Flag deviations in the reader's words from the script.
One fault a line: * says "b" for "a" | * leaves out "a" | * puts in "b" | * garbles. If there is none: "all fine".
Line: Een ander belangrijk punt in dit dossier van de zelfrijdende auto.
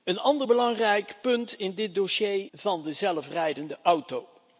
all fine